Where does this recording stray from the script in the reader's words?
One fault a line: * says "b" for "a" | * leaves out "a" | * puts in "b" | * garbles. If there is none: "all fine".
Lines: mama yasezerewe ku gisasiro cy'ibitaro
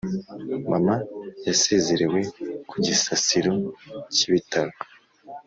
all fine